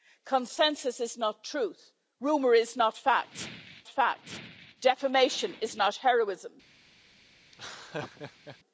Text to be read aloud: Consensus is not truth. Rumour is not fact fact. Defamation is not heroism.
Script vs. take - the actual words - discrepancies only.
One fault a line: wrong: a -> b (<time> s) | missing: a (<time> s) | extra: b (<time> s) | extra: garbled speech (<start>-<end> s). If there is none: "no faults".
no faults